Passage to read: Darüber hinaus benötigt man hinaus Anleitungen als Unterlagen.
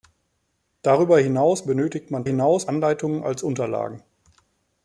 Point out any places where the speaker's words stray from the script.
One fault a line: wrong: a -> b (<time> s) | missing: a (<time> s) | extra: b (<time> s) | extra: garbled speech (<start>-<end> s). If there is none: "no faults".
no faults